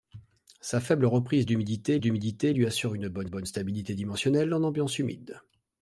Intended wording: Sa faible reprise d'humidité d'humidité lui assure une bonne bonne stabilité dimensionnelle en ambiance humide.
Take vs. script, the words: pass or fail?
pass